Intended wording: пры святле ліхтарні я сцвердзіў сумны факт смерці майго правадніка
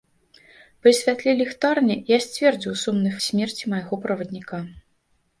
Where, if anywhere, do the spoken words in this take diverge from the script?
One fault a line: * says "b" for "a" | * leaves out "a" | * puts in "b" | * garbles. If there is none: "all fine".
* leaves out "факт"